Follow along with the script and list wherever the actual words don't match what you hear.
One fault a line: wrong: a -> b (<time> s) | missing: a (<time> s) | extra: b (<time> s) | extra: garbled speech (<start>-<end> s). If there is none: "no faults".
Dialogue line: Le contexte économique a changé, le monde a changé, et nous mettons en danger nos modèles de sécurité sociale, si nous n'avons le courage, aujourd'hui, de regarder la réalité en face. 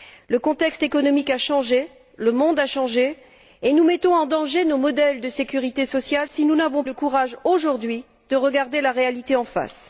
no faults